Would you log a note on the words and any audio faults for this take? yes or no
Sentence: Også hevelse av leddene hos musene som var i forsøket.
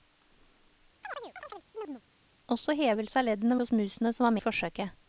yes